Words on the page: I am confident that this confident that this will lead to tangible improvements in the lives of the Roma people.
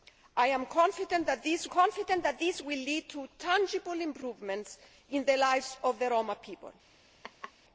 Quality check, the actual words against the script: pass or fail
pass